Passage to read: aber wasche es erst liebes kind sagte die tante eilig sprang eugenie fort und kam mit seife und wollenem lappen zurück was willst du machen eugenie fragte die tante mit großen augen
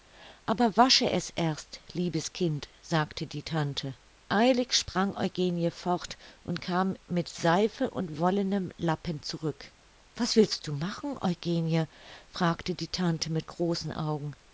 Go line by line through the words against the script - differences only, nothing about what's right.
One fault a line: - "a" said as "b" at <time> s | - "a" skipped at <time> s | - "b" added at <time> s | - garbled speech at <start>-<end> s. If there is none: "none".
none